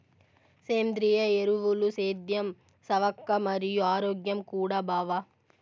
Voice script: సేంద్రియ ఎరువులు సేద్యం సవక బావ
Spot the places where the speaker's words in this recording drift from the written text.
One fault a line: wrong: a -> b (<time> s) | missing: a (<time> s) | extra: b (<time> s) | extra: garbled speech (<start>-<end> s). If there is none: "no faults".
extra: మరియు ఆరోగ్యం కూడా (3.5 s)